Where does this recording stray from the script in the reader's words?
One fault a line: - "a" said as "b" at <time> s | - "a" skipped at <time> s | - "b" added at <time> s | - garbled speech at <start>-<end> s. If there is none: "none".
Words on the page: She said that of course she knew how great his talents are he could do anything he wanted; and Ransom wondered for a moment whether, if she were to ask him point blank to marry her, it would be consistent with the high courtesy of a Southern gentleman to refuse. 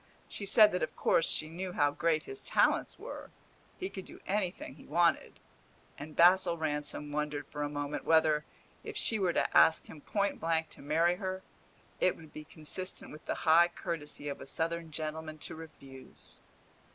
- "are" said as "were" at 3.0 s
- "Basil" added at 6.2 s